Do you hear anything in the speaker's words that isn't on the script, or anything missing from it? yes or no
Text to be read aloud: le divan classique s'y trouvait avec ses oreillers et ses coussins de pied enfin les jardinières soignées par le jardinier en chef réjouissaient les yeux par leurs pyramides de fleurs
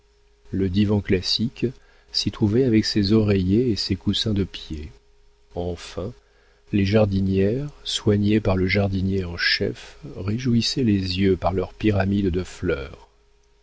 no